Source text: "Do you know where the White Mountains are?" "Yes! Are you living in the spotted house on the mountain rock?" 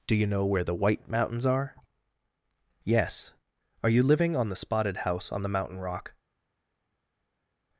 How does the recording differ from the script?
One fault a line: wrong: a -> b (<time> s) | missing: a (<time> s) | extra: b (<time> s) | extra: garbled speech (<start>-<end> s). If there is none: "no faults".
wrong: in -> on (4.3 s)